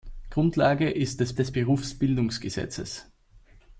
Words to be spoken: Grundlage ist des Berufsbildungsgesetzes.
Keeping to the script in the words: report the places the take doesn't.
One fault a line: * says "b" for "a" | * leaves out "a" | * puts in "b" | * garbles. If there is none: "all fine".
* puts in "des"